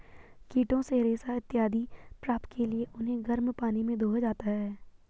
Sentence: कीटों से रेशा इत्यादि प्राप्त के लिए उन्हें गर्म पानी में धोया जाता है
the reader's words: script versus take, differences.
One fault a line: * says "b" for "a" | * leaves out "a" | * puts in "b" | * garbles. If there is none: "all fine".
all fine